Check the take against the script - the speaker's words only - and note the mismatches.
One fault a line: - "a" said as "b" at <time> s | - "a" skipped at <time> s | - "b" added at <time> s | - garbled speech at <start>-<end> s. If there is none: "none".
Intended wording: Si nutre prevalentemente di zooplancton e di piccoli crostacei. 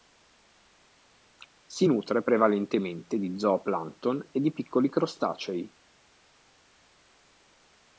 none